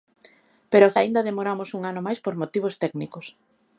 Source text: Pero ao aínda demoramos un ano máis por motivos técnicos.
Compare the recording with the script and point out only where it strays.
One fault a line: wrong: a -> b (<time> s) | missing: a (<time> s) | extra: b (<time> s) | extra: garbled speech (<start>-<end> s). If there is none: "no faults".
no faults